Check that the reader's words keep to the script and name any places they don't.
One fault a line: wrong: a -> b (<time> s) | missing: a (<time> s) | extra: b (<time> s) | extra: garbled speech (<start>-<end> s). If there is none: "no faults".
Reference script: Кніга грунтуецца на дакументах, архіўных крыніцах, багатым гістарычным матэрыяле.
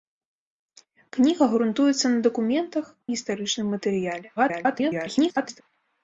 missing: архіўных крыніцах багатым (2.9 s)
extra: garbled speech (4.4-5.6 s)